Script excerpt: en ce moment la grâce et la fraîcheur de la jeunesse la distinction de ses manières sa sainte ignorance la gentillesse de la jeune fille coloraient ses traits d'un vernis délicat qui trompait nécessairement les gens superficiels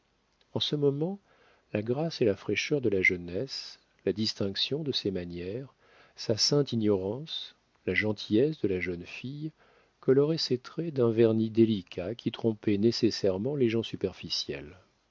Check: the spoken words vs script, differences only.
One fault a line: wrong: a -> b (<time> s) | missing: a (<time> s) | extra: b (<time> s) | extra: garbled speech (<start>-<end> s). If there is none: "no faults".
no faults